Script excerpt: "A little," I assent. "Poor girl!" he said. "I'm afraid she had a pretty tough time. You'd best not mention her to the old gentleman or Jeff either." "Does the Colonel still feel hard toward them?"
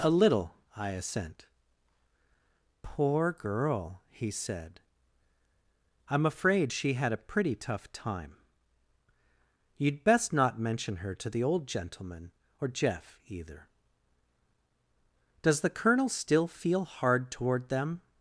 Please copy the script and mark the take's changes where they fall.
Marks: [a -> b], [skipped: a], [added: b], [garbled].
"A little," I assent. "Poor girl!" he said. "I'm afraid she had a pretty tough time. You'd best not mention her to the old gentleman or Jeff either." "Does the Colonel still feel hard toward them?"